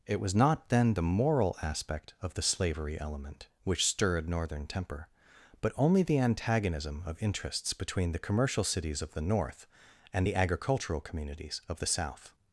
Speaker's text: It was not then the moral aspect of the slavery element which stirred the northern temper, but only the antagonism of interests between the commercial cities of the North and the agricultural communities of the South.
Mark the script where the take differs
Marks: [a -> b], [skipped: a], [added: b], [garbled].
It was not then the moral aspect of the slavery element which stirred [skipped: the] northern temper, but only the antagonism of interests between the commercial cities of the North and the agricultural communities of the South.